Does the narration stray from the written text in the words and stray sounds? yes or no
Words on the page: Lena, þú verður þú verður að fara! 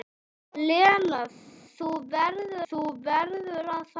no